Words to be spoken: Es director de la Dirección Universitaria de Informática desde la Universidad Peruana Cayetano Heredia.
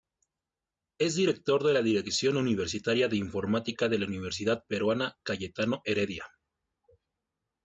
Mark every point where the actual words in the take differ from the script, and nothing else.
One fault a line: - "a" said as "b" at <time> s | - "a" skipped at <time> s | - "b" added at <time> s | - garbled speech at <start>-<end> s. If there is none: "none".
- "desde" said as "de" at 3.9 s